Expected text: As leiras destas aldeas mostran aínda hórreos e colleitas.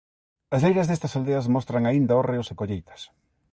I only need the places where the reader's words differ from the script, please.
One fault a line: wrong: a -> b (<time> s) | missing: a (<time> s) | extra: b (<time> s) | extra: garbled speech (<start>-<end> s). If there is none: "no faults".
no faults